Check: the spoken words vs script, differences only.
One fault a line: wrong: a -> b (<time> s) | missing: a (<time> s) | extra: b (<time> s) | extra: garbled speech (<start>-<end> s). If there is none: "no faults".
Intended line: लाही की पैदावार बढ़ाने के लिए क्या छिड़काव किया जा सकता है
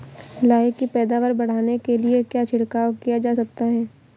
no faults